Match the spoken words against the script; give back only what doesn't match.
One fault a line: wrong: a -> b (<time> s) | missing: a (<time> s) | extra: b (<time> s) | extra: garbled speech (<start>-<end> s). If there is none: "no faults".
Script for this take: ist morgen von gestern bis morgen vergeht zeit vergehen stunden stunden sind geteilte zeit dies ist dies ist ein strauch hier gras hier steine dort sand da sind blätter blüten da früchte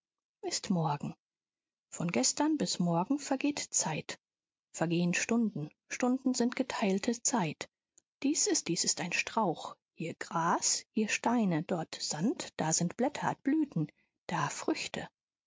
no faults